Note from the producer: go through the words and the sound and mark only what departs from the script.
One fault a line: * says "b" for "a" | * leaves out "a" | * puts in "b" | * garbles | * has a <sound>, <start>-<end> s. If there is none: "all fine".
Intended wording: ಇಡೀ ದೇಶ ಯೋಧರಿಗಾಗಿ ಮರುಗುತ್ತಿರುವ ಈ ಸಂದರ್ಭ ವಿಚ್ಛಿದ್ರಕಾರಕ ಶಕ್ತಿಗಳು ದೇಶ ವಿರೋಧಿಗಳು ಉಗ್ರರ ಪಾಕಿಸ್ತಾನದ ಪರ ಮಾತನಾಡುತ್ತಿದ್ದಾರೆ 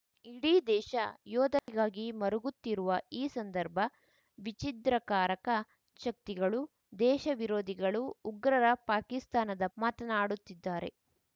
* has a dropout, 1.6-1.7 s
* leaves out "ಪರ"